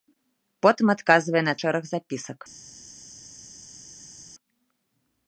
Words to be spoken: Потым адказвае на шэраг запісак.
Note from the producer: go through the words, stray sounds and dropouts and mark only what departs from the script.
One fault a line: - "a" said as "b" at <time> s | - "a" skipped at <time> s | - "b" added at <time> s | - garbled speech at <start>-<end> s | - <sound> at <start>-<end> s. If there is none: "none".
none